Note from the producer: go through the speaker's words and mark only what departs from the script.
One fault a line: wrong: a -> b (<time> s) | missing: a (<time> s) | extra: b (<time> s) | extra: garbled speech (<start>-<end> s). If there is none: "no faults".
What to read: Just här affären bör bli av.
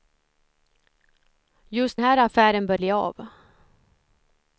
no faults